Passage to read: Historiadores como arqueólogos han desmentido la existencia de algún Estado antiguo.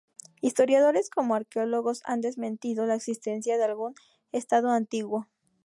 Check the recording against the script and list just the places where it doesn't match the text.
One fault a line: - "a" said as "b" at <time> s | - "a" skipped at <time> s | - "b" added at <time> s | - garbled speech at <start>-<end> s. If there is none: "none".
none